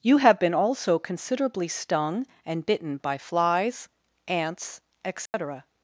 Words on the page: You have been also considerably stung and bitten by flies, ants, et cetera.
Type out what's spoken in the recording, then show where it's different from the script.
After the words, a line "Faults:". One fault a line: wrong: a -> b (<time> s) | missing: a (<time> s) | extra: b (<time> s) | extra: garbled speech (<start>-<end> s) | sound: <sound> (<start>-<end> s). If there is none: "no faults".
You have been also considerably stung and bitten by flies, ants, et cetera.
Faults:
sound: dropout (5.3-5.3 s)